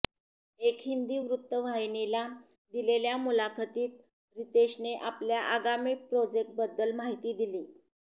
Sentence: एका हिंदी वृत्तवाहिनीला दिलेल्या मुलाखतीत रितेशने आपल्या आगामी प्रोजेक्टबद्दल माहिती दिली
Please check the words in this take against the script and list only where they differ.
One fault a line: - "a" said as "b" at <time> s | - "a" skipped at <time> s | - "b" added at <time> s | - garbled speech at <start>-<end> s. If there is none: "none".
none